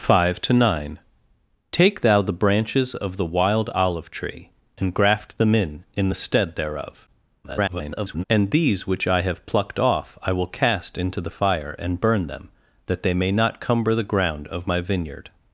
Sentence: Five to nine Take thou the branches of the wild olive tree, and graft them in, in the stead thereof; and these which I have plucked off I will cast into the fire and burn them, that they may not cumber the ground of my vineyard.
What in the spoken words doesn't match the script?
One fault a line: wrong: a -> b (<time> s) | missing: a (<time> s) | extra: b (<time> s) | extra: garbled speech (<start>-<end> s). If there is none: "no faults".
extra: garbled speech (7.4-8.2 s)